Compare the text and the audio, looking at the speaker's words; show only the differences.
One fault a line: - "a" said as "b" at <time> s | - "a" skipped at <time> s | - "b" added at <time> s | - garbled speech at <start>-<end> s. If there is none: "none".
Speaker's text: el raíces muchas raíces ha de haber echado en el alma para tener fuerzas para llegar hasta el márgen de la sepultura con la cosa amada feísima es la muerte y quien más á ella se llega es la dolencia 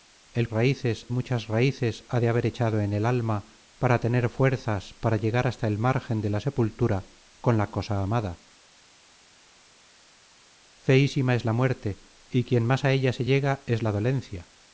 none